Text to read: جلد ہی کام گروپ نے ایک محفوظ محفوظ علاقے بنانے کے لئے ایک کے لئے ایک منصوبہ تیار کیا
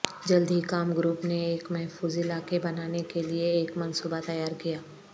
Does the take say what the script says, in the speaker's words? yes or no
no